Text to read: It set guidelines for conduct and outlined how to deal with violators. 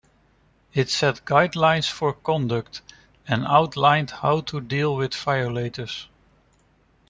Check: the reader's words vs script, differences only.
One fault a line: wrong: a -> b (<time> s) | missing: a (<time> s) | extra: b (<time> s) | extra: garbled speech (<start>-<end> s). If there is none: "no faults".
no faults